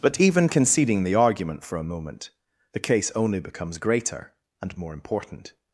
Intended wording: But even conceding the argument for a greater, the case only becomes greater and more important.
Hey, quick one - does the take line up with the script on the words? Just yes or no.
no